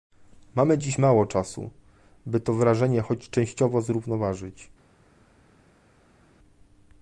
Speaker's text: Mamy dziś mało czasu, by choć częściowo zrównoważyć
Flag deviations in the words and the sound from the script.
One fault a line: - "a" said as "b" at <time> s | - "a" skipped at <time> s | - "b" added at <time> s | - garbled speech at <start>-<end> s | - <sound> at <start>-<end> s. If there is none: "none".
- "to wrażenie" added at 2.4 s